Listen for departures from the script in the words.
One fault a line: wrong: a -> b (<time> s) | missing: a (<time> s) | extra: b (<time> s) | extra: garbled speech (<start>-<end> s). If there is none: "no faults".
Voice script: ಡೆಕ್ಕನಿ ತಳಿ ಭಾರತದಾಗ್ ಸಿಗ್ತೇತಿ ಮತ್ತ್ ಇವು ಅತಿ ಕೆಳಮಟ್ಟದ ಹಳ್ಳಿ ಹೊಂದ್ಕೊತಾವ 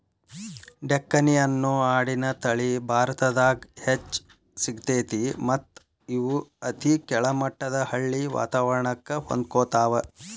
extra: ಅನ್ನೋ ಆಡಿನ (1.4 s)
extra: ಹೆಚ್ಚ್ (3.8 s)
extra: ವಾತವರಣಕ್ಕ (8.4 s)